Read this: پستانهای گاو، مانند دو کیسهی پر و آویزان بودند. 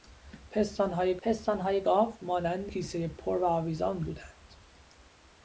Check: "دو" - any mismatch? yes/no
yes